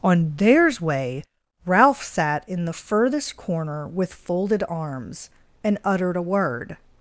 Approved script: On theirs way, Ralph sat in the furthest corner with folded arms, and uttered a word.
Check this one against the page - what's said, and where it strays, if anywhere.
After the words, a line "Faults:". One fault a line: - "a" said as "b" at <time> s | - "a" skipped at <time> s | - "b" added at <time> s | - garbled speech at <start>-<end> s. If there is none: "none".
On theirs way, Ralph sat in the furthest corner with folded arms, and uttered a word.
Faults:
none